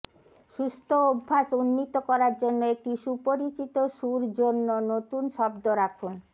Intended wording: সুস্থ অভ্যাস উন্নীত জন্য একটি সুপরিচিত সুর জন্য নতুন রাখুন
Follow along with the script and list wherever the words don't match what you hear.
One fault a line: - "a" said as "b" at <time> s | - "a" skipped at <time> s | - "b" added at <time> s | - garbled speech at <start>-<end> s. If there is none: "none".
- "করার" added at 2.1 s
- "শব্দ" added at 5.4 s